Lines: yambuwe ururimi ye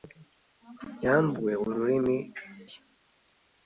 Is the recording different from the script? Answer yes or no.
no